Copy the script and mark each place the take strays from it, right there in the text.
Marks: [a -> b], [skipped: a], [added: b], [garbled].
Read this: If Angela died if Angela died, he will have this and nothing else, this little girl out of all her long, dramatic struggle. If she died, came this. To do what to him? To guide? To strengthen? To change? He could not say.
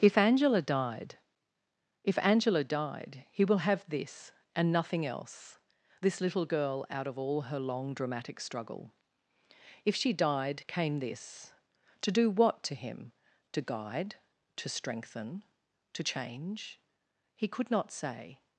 If Angela died if Angela died, he will have this and nothing else, this little girl out of all her long, dramatic struggle. If she died, came this. To do what to him? To guide? To strengthen? To change? He could not say.